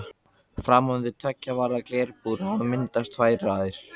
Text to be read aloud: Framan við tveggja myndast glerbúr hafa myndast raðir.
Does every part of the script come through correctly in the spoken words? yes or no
no